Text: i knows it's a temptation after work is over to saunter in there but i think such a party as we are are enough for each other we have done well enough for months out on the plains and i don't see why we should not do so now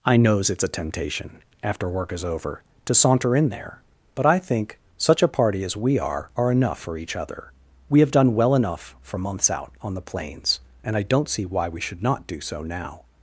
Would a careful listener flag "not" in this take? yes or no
no